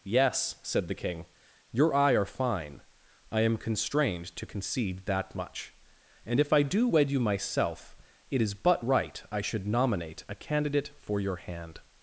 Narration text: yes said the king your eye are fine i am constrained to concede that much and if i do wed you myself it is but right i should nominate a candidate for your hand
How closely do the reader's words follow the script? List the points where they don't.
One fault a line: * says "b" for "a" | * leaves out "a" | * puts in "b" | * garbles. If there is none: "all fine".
all fine